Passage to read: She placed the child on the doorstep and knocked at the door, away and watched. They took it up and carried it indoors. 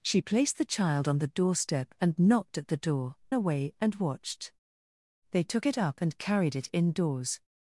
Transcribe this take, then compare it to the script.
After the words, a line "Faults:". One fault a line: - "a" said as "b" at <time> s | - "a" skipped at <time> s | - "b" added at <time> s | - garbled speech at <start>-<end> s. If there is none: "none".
She placed the child on the doorstep and knocked at the door, away and watched. They took it up and carried it indoors.
Faults:
none